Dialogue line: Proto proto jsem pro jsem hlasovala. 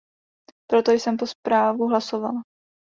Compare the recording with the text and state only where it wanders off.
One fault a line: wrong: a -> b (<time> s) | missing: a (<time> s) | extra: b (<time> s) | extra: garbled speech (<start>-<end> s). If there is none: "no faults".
missing: proto (0.9 s)
wrong: jsem -> zprávu (1.3 s)